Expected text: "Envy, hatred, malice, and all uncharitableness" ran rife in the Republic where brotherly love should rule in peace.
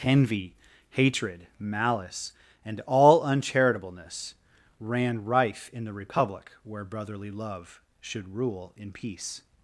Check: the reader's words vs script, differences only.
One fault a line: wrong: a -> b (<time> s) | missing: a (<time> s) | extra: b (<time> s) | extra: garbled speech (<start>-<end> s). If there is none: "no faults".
no faults